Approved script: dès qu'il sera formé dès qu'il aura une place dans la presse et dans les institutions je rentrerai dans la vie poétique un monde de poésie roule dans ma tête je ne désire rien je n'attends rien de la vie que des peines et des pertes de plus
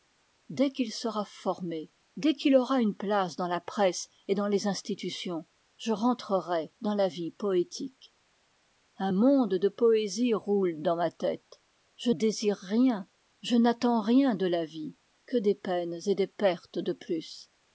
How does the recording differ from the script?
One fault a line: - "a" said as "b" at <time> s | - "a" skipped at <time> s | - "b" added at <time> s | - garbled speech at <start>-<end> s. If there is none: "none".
- "ne" skipped at 12.1 s